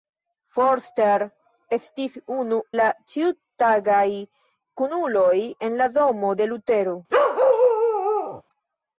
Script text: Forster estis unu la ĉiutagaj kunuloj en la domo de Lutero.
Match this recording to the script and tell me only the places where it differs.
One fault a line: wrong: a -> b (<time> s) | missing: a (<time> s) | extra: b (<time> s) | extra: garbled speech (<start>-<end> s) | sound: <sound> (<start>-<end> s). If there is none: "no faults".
sound: bark (7.1-8.4 s)